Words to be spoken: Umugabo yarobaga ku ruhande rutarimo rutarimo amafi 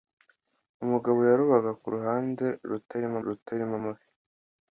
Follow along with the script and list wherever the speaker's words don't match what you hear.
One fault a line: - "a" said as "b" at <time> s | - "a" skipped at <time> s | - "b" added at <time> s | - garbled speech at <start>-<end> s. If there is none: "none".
none